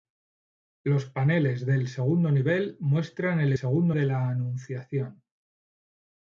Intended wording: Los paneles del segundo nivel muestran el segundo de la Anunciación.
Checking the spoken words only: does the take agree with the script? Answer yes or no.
yes